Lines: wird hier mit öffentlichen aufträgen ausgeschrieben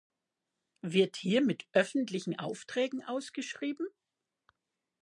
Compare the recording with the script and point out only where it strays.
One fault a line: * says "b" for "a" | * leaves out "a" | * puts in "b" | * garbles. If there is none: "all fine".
all fine